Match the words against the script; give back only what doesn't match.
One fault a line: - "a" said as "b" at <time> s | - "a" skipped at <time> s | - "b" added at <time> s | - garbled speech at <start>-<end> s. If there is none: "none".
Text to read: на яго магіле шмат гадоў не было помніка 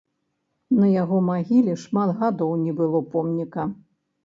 none